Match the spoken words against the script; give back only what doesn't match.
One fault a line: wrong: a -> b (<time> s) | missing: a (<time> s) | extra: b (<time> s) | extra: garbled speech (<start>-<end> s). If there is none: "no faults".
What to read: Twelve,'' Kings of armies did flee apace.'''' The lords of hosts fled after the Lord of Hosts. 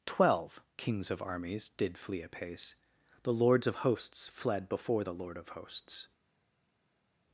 wrong: after -> before (4.7 s)